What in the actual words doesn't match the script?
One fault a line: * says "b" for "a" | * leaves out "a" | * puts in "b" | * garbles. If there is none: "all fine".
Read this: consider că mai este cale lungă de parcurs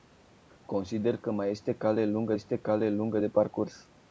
* puts in "este cale lungă"